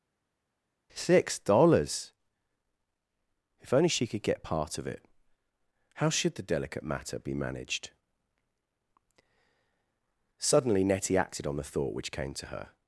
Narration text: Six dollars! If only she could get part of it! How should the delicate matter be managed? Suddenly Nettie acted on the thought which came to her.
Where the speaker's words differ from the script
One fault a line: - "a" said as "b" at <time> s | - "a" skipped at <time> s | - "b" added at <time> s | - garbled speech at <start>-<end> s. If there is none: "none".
none